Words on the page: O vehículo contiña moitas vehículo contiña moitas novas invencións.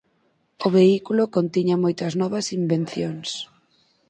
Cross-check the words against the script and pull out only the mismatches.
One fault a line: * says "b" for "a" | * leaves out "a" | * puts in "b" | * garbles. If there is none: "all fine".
* leaves out "vehículo contiña moitas"